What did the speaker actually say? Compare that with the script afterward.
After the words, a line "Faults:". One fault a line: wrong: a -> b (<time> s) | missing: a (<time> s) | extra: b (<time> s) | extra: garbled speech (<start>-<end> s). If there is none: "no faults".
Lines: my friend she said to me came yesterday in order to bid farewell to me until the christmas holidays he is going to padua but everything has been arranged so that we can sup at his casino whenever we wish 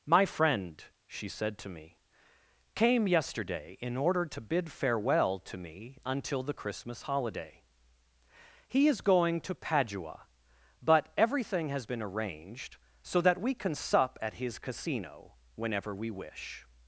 my friend she said to me came yesterday in order to bid farewell to me until the christmas holiday he is going to padua but everything has been arranged so that we can sup at his casino whenever we wish
Faults:
wrong: holidays -> holiday (7.0 s)